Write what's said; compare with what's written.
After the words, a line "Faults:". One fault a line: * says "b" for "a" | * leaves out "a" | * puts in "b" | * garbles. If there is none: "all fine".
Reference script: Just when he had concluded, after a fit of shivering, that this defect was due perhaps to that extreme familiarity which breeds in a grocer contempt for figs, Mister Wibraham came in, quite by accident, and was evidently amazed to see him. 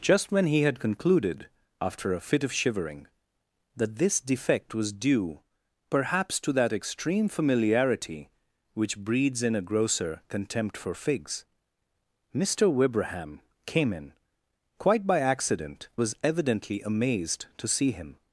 Just when he had concluded, after a fit of shivering, that this defect was due perhaps to that extreme familiarity which breeds in a grocer contempt for figs, Mister Wibraham came in, quite by accident, was evidently amazed to see him.
Faults:
* leaves out "and"